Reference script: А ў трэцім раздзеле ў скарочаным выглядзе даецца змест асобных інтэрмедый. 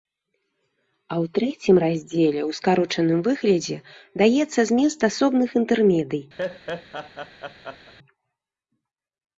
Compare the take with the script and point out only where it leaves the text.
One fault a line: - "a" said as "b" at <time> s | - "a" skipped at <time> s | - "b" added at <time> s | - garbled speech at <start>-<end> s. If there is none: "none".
none